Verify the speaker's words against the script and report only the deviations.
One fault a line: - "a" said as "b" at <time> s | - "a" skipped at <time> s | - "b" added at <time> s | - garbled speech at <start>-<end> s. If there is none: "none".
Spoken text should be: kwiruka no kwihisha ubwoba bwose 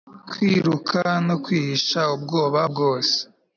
none